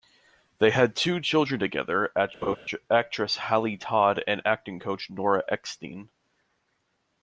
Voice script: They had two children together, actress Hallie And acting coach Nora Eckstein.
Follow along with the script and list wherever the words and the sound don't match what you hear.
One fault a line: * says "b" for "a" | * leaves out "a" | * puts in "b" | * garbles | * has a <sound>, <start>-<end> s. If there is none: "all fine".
* has a laugh, 2.4-2.6 s
* puts in "Todd"